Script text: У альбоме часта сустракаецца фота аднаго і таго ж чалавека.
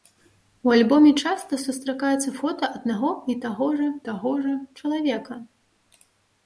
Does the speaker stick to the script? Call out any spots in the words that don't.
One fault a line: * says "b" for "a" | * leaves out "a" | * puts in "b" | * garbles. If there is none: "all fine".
* puts in "таго ж"